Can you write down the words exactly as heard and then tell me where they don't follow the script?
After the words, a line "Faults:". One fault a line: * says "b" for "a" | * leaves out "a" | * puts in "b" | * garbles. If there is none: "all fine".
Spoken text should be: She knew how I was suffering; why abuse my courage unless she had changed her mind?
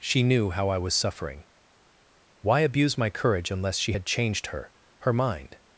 She knew how I was suffering; why abuse my courage unless she had changed her her mind?
Faults:
* puts in "her"